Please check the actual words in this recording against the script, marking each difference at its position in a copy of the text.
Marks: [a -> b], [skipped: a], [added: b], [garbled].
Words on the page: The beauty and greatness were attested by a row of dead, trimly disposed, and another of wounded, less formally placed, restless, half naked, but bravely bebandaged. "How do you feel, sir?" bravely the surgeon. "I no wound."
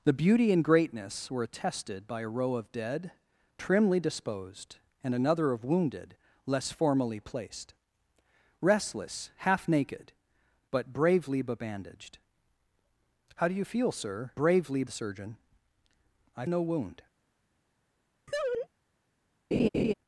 The beauty and greatness were attested by a row of dead, trimly disposed, and another of wounded, less formally placed, restless, half naked, but bravely bebandaged. "How do you feel, sir?" bravely the surgeon. "I no wound."